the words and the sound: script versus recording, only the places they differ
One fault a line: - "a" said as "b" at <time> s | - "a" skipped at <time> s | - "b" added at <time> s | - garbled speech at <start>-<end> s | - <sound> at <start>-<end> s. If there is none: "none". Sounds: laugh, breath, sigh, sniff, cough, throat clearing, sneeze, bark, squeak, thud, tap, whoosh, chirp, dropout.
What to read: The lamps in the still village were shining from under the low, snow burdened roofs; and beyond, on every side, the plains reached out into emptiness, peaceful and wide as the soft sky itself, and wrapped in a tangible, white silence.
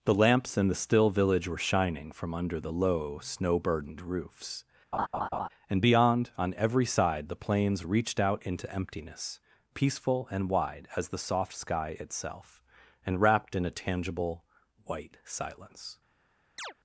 - laugh at 4.9-5.5 s
- chirp at 16.6-16.7 s